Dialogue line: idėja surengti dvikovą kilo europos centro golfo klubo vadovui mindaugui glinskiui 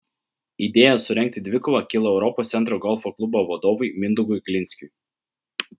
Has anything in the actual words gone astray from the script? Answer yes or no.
no